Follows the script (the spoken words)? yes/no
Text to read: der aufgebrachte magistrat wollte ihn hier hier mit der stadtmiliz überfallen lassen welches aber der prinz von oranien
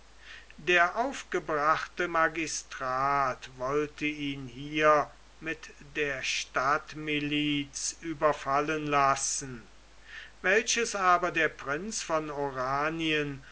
no